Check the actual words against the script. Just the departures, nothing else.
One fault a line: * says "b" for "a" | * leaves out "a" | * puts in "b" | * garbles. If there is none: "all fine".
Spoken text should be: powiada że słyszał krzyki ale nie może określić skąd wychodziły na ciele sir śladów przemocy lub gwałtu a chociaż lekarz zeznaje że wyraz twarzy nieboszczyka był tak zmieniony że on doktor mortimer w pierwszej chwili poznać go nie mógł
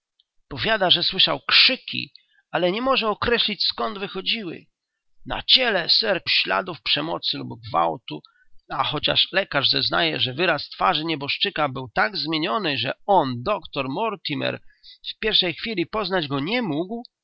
all fine